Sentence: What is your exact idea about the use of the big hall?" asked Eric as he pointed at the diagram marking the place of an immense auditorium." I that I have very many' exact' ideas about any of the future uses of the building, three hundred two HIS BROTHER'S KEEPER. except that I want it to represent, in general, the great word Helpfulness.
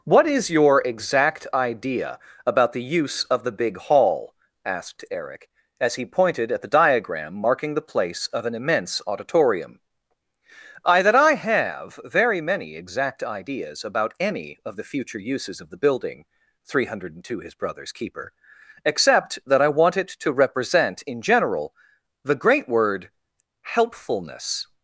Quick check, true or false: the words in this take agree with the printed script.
true